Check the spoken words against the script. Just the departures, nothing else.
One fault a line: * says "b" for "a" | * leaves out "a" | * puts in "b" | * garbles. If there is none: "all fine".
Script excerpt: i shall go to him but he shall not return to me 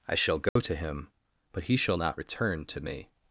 all fine